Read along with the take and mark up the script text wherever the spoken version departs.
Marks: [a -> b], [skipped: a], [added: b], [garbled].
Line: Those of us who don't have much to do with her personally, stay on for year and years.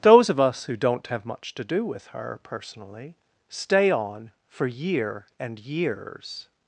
Those of us who don't have much to do with her personally, stay on for year and years.